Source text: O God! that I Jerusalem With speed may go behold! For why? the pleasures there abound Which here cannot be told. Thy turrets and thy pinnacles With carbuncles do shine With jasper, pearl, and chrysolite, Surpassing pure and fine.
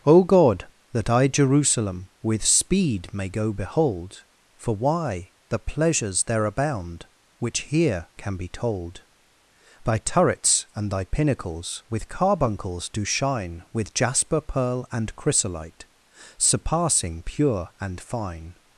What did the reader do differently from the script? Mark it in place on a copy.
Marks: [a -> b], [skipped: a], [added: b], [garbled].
O God! that I Jerusalem With speed may go behold! For why? the pleasures there abound Which here [cannot -> can] be told. Thy turrets and thy pinnacles With carbuncles do shine With jasper, pearl, and chrysolite, Surpassing pure and fine.